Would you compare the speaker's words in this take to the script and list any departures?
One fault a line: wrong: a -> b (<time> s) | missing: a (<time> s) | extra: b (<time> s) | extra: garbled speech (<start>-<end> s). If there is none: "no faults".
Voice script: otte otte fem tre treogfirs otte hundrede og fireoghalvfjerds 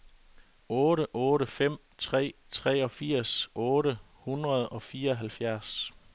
no faults